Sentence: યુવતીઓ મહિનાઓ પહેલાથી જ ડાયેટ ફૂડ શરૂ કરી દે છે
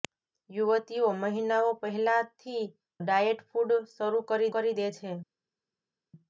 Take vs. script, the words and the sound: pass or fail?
fail